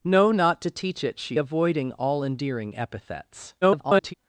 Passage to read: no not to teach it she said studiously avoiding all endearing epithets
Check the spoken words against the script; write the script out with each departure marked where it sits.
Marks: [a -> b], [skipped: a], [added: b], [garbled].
no not to teach it she [skipped: said studiously] avoiding all endearing epithets [garbled]